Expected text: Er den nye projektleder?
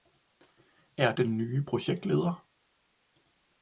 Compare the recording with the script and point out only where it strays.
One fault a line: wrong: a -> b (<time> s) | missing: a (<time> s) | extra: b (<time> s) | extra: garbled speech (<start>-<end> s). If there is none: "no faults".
no faults